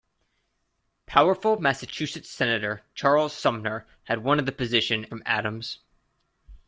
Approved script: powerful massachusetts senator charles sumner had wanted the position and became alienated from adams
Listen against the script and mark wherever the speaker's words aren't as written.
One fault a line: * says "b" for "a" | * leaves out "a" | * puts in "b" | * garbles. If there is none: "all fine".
* leaves out "and became alienated"